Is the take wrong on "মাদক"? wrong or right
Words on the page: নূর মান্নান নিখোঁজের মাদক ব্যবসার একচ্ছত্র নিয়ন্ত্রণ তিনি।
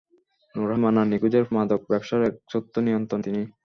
right